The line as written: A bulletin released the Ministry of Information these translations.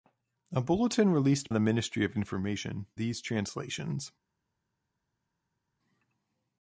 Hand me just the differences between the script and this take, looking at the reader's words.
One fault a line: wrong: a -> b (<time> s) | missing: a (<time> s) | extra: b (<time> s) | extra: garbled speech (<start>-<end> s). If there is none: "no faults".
no faults